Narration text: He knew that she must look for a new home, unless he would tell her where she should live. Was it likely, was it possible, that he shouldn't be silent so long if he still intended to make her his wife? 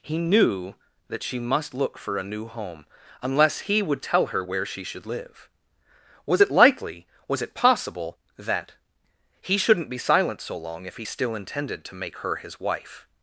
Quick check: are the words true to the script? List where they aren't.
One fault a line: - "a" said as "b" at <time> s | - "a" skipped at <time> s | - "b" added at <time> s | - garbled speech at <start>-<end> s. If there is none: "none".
none